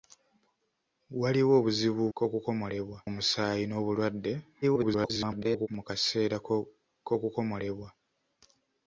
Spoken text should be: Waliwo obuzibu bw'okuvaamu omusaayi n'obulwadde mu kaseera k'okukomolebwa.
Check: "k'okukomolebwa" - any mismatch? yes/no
no